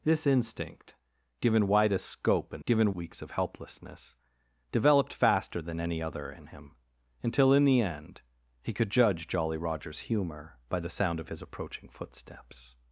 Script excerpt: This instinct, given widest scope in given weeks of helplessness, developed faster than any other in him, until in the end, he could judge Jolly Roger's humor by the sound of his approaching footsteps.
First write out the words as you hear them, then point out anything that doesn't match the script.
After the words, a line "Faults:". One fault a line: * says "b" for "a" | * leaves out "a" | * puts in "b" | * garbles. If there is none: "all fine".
This instinct, given widest scope in given weeks of helplessness, developed faster than any other in him, until in the end, he could judge Jolly Roger's humor by the sound of his approaching footsteps.
Faults:
all fine